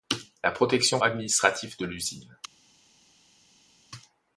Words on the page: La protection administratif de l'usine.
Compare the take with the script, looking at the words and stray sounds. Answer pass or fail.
pass